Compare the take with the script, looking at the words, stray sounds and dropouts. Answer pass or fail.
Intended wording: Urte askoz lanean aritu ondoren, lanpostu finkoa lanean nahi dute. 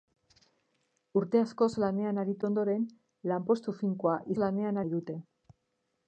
pass